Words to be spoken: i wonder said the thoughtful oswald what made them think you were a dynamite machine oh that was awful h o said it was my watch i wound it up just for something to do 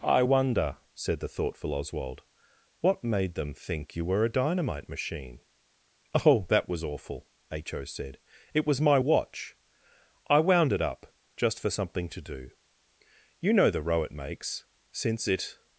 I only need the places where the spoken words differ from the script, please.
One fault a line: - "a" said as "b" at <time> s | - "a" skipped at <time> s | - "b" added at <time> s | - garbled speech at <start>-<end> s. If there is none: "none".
- "you know the row it makes since it" added at 13.4 s